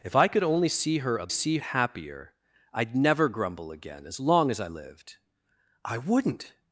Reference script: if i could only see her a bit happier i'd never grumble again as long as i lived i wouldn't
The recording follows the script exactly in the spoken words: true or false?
false